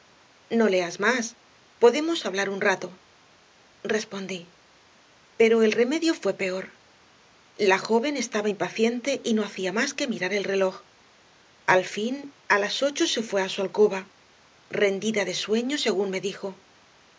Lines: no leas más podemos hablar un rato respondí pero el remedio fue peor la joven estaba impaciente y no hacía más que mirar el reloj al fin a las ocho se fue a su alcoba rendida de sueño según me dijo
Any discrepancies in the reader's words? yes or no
no